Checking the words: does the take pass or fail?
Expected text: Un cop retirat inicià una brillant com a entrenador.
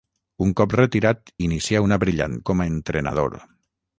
pass